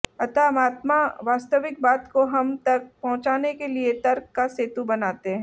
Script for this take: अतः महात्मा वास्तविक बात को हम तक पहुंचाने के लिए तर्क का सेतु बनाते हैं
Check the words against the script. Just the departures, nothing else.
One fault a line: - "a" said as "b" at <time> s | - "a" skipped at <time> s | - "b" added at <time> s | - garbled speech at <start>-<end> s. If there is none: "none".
none